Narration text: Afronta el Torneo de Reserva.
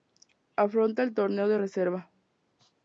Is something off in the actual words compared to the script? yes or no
no